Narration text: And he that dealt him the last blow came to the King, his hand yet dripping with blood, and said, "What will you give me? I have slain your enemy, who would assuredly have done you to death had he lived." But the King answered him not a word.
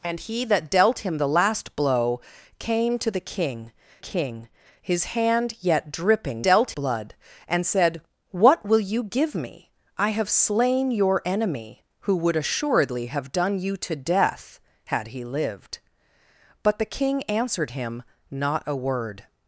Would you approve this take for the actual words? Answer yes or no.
no